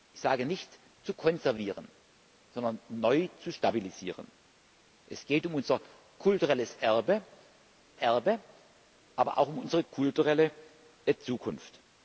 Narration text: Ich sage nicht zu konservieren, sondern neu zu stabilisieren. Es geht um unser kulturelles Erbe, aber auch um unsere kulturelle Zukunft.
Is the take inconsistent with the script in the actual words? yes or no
yes